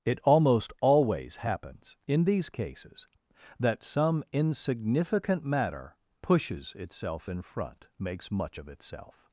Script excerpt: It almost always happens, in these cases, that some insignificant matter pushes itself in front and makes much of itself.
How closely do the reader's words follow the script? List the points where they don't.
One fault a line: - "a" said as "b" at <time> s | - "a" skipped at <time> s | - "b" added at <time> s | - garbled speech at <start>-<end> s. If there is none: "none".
- "and" skipped at 7.9 s